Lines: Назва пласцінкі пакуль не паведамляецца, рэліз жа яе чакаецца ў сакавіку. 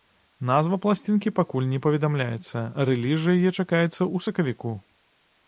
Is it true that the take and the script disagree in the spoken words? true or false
false